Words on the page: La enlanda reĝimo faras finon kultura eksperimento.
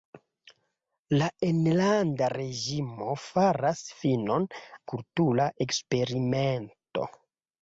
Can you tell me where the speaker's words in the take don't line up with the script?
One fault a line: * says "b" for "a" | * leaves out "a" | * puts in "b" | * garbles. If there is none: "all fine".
all fine